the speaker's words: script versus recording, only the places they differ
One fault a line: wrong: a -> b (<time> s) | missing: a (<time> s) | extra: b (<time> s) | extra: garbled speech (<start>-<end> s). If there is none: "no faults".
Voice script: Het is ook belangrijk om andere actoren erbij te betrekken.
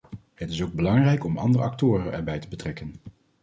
no faults